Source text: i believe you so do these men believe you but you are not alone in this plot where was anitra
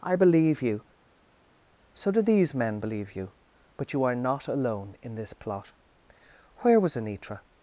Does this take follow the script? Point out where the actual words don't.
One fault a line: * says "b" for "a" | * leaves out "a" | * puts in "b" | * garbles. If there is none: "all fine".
all fine